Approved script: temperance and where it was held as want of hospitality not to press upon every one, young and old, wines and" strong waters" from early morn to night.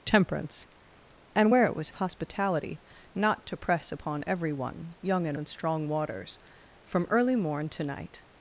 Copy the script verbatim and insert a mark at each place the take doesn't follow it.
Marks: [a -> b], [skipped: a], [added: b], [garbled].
temperance and where it was [skipped: held as want] of hospitality not to press upon every one, young and [skipped: old, wines] and" strong waters" from early morn to night.